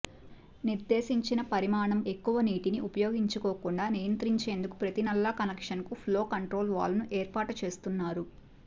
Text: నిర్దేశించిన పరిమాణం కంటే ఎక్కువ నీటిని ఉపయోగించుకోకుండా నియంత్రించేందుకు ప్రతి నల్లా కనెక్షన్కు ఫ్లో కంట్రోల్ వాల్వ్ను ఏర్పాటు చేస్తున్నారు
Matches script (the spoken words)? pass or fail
fail